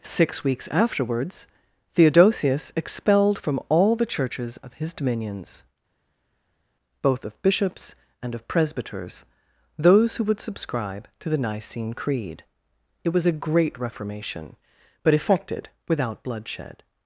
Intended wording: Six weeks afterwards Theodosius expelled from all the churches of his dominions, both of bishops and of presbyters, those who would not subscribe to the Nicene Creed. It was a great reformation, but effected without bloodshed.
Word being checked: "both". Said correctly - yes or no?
yes